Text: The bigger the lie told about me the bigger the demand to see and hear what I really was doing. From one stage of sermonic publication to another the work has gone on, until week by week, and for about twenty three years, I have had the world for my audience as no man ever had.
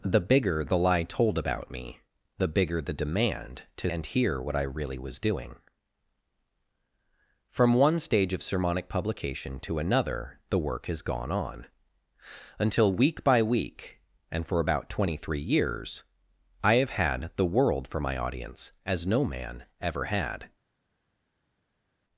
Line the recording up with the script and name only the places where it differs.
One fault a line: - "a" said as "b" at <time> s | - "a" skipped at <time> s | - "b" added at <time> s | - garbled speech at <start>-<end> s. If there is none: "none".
- "see" skipped at 3.9 s